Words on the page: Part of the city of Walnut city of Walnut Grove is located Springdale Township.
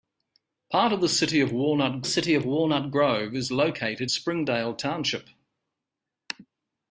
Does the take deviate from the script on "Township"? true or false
false